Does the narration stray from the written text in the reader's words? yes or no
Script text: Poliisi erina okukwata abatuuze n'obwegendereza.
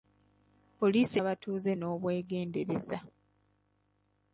yes